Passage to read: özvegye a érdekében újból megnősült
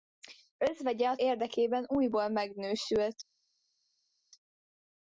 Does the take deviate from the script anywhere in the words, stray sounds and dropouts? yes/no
no